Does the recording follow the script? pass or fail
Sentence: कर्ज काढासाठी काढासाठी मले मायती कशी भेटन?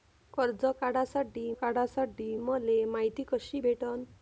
pass